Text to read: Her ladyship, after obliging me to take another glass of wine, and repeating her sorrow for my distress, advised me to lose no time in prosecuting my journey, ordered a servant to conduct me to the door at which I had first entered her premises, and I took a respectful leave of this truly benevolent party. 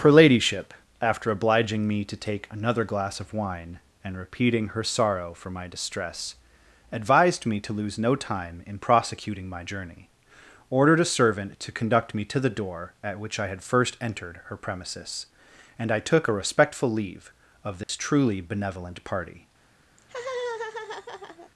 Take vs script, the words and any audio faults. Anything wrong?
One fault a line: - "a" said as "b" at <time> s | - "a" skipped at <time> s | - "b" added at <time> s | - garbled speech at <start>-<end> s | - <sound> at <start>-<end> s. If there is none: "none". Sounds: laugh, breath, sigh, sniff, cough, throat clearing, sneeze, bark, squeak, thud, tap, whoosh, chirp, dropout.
- dropout at 17.8-17.9 s
- laugh at 20.0-21.5 s